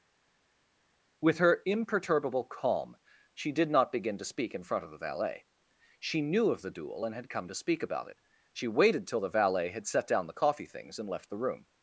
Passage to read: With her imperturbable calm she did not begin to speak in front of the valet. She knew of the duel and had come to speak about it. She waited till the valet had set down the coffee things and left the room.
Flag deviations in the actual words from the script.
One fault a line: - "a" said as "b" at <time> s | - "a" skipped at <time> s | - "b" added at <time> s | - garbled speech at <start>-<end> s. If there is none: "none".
none